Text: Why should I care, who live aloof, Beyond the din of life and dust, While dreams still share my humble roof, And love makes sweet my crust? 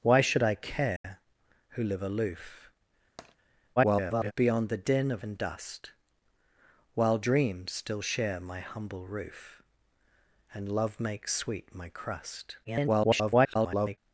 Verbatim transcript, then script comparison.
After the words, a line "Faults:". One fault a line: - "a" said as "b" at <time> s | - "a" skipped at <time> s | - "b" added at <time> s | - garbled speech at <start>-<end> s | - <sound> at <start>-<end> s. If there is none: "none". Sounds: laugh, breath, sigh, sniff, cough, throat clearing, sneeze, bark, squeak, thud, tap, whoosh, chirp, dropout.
Why should I care, who live aloof, [garbled] Beyond the din of and dust, While dreams still share my humble roof, And love makes sweet my crust? [garbled]
Faults:
- dropout at 1.0-1.0 s
- tap at 3.2-3.4 s
- garbled speech at 3.8-4.3 s
- "life" skipped at 5.2 s
- garbled speech at 12.6-14.0 s